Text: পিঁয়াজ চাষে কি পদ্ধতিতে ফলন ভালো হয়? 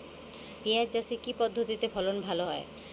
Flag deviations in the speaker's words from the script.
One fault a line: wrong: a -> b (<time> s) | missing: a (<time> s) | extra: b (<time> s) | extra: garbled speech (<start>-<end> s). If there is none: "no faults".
no faults